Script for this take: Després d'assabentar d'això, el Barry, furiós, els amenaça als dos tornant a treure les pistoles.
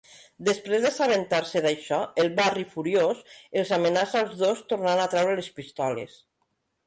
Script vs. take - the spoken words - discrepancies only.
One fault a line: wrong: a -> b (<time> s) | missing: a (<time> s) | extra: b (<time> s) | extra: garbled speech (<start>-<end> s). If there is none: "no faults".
extra: se (1.5 s)